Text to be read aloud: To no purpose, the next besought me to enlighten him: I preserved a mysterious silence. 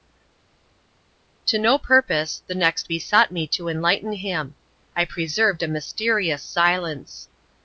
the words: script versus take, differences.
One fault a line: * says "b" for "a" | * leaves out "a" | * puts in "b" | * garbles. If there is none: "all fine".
all fine